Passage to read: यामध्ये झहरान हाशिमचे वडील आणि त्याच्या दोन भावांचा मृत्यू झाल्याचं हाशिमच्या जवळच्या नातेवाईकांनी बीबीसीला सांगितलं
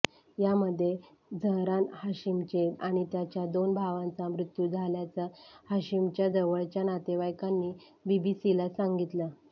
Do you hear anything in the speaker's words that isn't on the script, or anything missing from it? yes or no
yes